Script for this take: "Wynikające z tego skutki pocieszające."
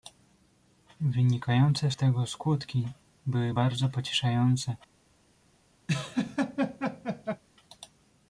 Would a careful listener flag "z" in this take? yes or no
no